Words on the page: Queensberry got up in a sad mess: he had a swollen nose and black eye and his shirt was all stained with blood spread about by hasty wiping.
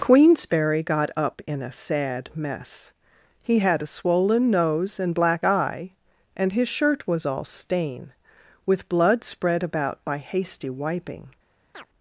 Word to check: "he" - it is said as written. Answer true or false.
true